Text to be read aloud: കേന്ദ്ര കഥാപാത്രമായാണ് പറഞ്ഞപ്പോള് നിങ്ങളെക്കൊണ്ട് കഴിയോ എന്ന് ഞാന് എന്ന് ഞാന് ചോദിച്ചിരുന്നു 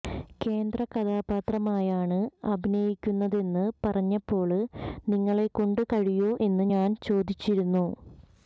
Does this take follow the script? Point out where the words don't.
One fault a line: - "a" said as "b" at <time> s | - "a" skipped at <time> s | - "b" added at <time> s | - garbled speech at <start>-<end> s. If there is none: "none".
- "അഭിനയിക്കുന്നതെന്ന്" added at 2.5 s
- "എന്ന് ഞാന്" skipped at 7.0 s